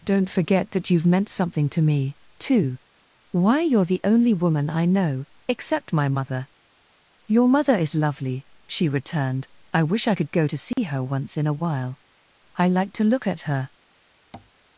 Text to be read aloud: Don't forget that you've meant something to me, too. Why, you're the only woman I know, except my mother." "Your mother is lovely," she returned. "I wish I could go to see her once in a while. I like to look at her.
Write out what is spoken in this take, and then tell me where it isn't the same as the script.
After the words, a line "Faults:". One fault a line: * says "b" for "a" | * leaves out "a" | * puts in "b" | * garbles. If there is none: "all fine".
Don't forget that you've meant something to me, too. Why, you're the only woman I know, except my mother." "Your mother is lovely," she returned. "I wish I could go to see her once in a while. I like to look at her.
Faults:
all fine